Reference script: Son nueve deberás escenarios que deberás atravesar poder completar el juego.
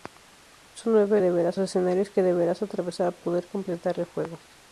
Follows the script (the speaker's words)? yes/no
yes